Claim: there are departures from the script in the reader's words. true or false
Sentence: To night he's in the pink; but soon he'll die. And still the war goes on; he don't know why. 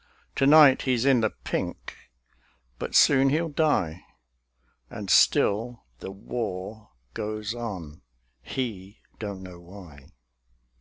false